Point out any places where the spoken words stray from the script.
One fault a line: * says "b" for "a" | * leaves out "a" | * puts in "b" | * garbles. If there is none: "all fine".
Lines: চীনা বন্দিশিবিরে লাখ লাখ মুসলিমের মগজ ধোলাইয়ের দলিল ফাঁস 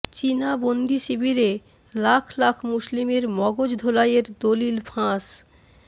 all fine